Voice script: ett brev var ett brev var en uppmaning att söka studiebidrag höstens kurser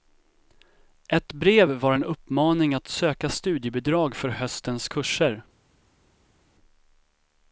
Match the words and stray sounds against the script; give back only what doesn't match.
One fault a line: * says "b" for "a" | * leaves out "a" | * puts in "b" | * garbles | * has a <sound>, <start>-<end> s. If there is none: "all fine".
* leaves out "ett brev var"
* puts in "för"